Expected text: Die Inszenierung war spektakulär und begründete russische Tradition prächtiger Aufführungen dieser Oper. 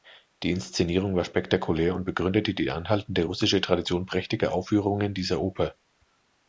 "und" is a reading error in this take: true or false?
false